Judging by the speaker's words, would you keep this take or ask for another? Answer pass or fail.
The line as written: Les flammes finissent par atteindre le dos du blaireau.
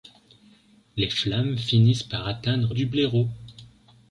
fail